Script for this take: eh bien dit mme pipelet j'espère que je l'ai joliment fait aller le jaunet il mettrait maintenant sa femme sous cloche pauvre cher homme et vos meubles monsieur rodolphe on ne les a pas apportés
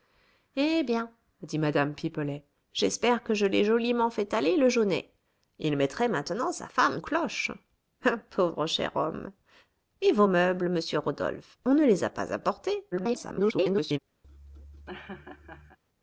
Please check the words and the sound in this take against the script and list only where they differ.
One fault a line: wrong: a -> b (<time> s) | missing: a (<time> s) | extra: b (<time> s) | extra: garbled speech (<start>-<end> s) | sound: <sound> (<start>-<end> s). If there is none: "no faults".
missing: sous (7.0 s)
extra: garbled speech (12.9-14.0 s)
sound: laugh (14.2-15.8 s)